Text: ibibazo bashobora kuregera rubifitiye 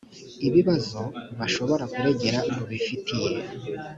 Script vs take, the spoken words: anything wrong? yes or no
no